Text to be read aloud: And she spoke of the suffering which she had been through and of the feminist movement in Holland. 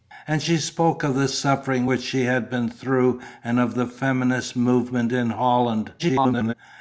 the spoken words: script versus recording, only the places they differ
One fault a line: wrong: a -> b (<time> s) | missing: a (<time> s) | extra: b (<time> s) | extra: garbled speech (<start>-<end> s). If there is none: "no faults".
extra: garbled speech (6.0-6.5 s)